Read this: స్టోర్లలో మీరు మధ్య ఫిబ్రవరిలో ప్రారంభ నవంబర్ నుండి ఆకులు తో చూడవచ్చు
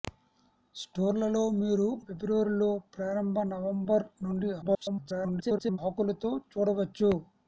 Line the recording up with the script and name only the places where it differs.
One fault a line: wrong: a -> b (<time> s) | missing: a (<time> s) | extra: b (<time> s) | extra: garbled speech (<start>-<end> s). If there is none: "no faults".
missing: మధ్య (1.9 s)
extra: garbled speech (4.6-5.8 s)